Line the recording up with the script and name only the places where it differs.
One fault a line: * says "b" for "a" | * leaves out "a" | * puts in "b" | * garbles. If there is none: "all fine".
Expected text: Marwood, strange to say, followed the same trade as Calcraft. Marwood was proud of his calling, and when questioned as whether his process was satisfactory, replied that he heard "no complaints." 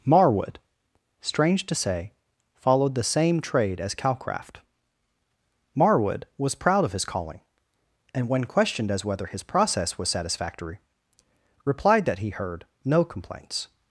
all fine